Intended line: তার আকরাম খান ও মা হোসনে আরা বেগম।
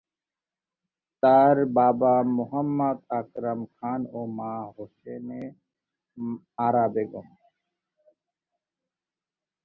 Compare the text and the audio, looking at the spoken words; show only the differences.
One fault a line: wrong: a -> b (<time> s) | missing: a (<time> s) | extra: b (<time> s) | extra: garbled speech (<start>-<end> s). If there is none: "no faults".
extra: বাবা মোহাম্মদ (1.8 s)